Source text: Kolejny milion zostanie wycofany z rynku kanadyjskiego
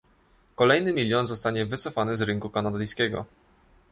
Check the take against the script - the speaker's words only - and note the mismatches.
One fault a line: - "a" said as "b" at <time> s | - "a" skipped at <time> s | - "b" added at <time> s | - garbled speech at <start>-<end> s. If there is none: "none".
none